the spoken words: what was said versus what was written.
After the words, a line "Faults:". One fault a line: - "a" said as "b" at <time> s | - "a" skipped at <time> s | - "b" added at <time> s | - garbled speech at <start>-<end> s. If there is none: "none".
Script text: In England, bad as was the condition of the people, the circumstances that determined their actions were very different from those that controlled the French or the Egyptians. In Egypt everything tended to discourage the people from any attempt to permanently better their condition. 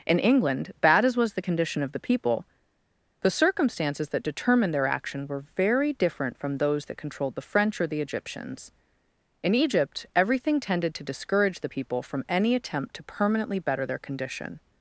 In England, bad as was the condition of the people, the circumstances that determined their action were very different from those that controlled the French or the Egyptians. In Egypt everything tended to discourage the people from any attempt to permanently better their condition.
Faults:
- "actions" said as "action" at 4.9 s